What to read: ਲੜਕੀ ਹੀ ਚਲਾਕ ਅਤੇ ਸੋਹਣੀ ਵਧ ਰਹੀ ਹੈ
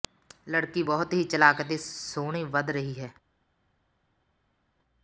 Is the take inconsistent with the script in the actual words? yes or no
yes